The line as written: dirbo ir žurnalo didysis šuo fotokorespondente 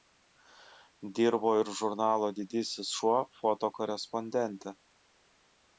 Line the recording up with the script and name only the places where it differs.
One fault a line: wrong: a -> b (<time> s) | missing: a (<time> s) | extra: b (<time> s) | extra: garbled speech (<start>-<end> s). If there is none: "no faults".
no faults